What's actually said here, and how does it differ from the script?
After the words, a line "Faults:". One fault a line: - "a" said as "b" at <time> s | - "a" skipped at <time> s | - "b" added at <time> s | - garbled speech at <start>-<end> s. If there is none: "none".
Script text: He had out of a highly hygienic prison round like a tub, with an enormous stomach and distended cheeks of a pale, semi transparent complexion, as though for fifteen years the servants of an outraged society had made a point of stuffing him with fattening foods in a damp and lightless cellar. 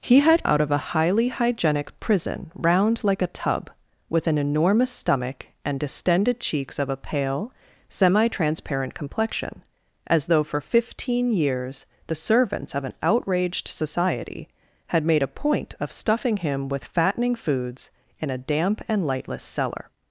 He had out of a highly hygienic prison round like a tub, with an enormous stomach and distended cheeks of a pale, semi transparent complexion, as though for fifteen years the servants of an outraged society had made a point of stuffing him with fattening foods in a damp and lightless cellar.
Faults:
none